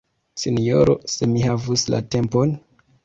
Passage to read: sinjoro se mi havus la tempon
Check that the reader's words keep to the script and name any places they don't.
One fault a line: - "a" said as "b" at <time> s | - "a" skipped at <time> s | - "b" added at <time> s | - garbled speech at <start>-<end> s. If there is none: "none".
none